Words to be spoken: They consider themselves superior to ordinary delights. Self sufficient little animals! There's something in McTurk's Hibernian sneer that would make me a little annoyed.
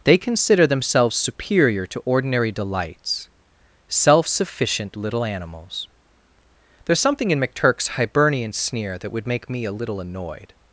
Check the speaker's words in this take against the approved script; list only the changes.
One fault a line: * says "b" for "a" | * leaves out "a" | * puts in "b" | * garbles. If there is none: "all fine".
all fine